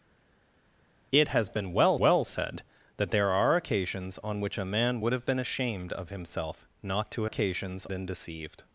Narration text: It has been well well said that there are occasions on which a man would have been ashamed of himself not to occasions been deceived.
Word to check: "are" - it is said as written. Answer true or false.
true